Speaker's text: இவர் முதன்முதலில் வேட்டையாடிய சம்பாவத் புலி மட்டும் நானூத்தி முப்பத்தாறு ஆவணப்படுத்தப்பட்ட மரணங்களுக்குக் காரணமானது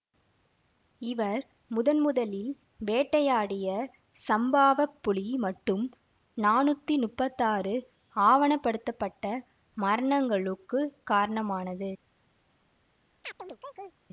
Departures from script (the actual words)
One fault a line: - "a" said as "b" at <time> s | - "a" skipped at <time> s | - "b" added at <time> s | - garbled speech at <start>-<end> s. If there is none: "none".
none